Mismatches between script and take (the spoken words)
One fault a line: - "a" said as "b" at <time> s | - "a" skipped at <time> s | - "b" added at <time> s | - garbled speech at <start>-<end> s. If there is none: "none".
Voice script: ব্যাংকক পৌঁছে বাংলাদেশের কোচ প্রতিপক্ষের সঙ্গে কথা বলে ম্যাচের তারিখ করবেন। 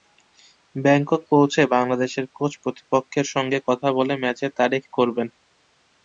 none